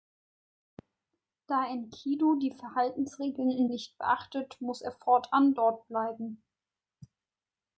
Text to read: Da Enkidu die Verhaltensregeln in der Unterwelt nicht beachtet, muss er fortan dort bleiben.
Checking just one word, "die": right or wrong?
right